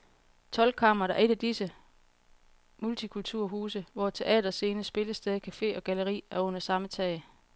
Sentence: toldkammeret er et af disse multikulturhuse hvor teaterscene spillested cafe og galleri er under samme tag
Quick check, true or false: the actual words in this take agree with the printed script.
true